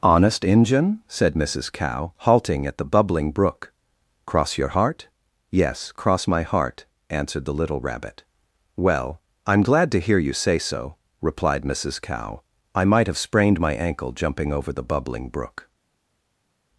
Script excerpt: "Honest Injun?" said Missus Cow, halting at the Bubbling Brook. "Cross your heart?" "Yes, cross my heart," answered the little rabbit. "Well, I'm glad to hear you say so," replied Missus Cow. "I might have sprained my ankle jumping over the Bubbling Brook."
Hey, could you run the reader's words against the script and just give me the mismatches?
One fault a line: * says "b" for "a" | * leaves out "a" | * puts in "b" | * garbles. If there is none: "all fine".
all fine